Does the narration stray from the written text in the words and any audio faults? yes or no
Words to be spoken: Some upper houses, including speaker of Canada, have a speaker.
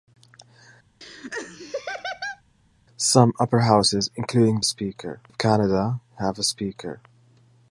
yes